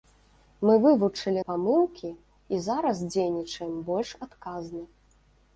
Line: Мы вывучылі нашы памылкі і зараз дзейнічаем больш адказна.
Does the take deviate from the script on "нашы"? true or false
true